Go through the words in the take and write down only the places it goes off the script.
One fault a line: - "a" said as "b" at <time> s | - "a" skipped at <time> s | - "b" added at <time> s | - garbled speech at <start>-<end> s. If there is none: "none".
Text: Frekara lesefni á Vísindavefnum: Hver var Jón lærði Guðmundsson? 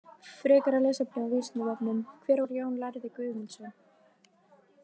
none